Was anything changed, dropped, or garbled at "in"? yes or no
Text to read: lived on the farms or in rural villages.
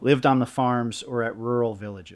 yes